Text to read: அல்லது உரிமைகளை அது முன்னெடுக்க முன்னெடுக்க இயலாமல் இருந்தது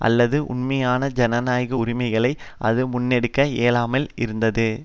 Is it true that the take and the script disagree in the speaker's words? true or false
true